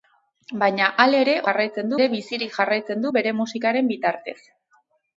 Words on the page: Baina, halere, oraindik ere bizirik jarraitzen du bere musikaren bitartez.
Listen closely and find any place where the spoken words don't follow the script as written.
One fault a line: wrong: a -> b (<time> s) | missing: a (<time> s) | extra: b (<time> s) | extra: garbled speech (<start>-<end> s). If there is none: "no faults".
wrong: oraindik -> jarraitzen (1.5 s)